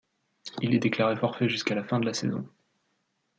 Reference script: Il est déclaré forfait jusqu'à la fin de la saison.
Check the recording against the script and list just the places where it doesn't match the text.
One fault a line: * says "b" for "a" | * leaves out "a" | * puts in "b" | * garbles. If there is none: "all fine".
all fine